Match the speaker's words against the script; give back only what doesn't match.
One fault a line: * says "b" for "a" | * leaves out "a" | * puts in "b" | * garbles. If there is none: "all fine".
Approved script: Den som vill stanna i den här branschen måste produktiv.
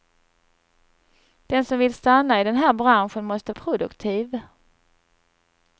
all fine